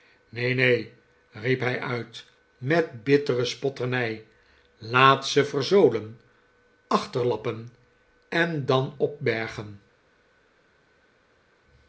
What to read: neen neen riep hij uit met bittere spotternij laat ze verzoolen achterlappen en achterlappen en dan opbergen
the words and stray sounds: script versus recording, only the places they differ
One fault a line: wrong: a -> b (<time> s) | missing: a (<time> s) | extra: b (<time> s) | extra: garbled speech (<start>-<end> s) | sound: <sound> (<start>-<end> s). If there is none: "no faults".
missing: achterlappen en (8.7 s)